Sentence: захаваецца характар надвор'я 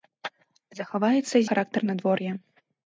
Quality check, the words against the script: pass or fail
pass